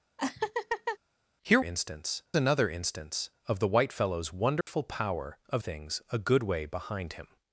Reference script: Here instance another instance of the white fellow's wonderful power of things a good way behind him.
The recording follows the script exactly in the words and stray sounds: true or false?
false